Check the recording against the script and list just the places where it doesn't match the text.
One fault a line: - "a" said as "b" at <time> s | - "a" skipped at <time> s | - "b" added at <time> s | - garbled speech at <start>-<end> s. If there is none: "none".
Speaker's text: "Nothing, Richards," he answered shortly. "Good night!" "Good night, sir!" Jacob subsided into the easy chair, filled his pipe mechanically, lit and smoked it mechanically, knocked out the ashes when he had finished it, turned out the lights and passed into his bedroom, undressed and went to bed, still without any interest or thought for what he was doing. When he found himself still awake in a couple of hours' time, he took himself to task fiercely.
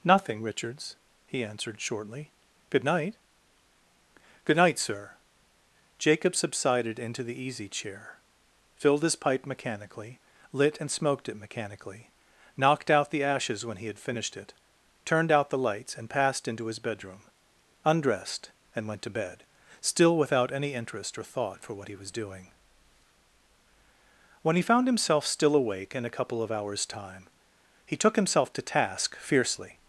none